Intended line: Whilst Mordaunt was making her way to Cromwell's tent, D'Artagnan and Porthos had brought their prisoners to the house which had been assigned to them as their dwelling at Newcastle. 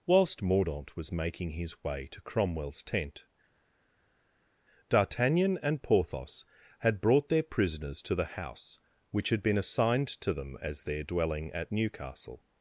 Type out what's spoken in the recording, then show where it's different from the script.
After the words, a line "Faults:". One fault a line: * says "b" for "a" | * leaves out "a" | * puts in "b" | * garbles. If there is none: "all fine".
Whilst Mordaunt was making his way to Cromwell's tent, D'Artagnan and Porthos had brought their prisoners to the house which had been assigned to them as their dwelling at Newcastle.
Faults:
* says "his" for "her"